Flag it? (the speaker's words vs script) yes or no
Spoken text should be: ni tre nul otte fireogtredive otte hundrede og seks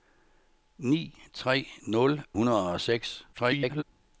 yes